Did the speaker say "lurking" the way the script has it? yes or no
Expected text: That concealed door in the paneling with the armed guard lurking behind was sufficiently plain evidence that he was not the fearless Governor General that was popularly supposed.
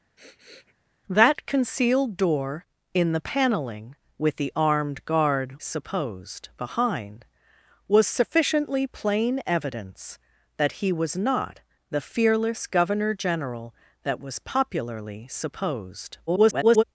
no